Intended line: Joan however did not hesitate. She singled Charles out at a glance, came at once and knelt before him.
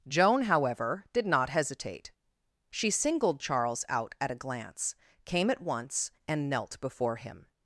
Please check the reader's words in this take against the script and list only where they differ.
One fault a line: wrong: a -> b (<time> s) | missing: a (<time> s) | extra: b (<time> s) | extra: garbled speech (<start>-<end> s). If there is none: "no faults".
no faults